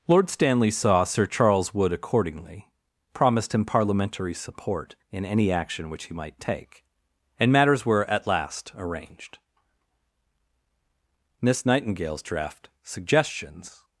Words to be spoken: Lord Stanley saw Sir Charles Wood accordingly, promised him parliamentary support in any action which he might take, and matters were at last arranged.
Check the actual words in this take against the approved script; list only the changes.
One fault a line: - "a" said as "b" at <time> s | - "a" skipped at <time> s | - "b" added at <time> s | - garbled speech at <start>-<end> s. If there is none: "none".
- "Miss Nightingale's draft Suggestions" added at 11.4 s